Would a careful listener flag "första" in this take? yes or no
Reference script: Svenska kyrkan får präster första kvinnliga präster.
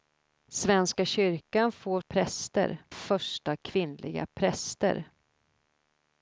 no